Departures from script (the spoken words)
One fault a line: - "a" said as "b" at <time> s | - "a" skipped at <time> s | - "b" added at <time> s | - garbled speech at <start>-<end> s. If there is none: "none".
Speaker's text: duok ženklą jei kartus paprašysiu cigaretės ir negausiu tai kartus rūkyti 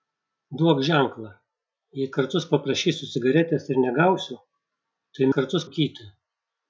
none